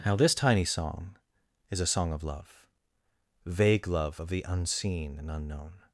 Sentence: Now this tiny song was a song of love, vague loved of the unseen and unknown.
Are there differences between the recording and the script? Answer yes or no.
yes